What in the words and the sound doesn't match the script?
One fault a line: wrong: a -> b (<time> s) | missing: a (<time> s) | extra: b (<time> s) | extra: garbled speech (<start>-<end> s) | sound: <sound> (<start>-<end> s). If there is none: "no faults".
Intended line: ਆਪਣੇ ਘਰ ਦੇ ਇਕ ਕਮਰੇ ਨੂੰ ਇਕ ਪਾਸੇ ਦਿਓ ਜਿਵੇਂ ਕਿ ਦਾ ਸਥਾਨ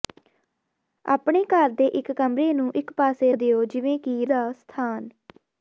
no faults